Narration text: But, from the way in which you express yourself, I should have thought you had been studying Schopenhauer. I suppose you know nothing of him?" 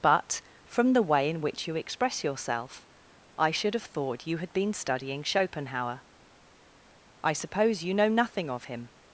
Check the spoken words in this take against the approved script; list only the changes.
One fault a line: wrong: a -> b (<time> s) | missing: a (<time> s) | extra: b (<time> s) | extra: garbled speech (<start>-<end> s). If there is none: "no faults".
no faults